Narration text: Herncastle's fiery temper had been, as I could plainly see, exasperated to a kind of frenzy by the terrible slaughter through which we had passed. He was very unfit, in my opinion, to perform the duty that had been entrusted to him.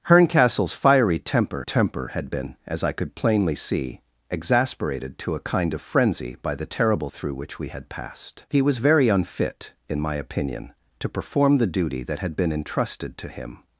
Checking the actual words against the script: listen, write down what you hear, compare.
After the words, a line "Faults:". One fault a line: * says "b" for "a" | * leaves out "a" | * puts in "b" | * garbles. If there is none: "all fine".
Herncastle's fiery temper temper had been, as I could plainly see, exasperated to a kind of frenzy by the terrible through which we had passed. He was very unfit, in my opinion, to perform the duty that had been entrusted to him.
Faults:
* puts in "temper"
* leaves out "slaughter"